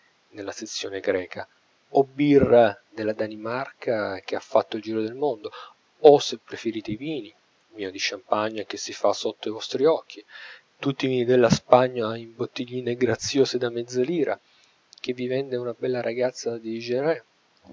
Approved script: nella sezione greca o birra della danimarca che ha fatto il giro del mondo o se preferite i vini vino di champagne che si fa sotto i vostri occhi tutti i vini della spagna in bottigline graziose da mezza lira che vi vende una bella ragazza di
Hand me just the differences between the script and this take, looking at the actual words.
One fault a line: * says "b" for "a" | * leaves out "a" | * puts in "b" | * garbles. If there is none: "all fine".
all fine